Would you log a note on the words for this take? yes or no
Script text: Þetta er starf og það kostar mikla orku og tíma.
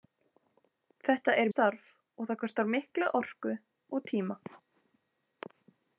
no